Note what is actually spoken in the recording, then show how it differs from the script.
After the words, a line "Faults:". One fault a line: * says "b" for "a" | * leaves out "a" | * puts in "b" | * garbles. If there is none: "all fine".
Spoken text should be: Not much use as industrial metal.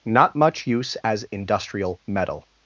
Not much use as industrial metal.
Faults:
all fine